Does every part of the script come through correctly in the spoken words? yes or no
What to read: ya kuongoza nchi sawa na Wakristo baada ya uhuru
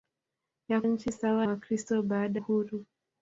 no